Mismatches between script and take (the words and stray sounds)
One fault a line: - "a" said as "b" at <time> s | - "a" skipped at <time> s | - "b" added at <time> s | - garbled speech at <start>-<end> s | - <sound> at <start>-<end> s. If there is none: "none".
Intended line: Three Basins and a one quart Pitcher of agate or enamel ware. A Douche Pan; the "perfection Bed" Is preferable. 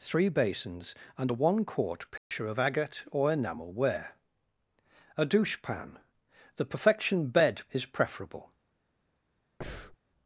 - dropout at 2.2-2.3 s
- breath at 9.6-10.0 s